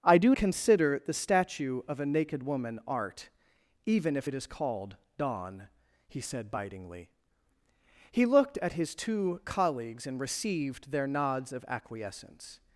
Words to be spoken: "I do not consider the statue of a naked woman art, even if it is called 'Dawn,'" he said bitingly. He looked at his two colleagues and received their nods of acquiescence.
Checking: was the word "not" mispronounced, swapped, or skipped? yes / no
yes